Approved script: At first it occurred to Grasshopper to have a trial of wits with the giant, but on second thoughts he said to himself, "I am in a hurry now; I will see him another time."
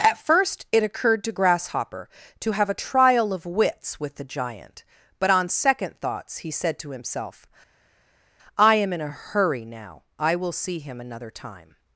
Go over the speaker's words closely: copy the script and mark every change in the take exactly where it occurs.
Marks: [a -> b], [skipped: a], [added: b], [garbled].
At first it occurred to Grasshopper to have a trial of wits with the giant, but on second thoughts he said to himself, "I am in a hurry now; I will see him another time."